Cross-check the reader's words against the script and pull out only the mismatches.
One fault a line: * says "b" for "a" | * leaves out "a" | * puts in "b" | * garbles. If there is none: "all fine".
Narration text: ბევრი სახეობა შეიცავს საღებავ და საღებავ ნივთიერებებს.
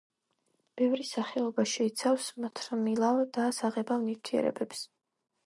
* says "მთრიმლავ" for "საღებავ"